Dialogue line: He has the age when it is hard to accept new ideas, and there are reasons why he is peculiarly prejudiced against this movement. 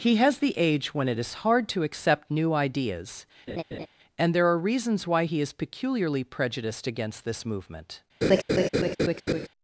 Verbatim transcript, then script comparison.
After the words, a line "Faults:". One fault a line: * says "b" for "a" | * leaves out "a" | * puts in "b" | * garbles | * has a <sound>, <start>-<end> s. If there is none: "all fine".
He has the age when it is hard to accept new ideas, and there are reasons why he is peculiarly prejudiced against this movement.
Faults:
* has a laugh, 3.5-3.9 s
* has a laugh, 8.2-9.5 s